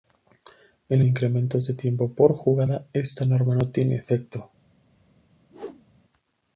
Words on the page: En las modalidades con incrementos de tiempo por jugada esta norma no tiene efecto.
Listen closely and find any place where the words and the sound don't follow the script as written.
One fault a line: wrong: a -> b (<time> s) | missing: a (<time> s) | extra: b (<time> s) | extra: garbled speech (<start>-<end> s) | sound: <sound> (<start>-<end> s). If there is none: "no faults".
missing: las modalidades con (1.1 s)
sound: whoosh (5.5-5.9 s)